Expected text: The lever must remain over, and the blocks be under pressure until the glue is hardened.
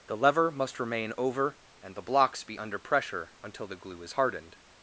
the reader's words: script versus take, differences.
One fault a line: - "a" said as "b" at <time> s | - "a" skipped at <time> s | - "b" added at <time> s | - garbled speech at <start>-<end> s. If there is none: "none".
none